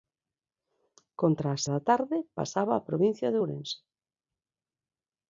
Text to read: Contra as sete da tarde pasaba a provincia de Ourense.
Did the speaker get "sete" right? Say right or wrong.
wrong